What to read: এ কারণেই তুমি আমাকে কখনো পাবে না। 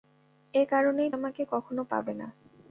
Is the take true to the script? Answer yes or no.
no